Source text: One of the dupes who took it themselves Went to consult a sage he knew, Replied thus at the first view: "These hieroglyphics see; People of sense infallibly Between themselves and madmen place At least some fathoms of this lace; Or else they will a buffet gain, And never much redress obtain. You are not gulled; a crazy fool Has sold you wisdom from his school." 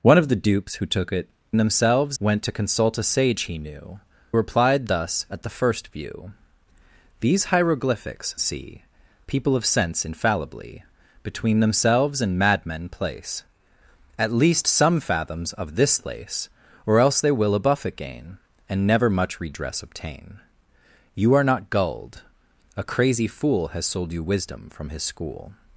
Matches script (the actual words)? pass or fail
pass